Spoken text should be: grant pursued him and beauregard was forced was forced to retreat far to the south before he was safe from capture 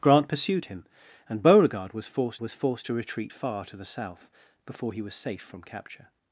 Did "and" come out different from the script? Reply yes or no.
no